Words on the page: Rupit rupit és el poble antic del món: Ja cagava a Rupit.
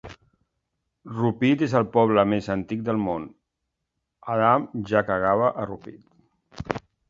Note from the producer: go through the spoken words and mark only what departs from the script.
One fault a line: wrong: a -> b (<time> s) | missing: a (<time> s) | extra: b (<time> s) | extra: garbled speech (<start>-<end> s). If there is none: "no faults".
missing: rupit (1.6 s)
extra: més (2.3 s)
extra: Adam (4.4 s)